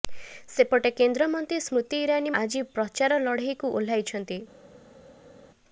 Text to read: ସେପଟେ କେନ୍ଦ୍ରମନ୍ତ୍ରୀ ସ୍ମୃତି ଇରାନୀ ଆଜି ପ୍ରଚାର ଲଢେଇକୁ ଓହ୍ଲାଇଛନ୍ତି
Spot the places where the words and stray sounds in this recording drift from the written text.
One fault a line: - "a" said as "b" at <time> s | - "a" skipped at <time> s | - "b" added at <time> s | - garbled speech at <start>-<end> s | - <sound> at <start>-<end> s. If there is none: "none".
none